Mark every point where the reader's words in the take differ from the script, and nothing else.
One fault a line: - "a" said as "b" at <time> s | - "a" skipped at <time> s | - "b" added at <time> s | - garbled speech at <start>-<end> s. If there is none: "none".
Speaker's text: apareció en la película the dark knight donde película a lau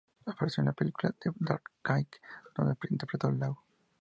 - "película" said as "interpretó" at 2.9 s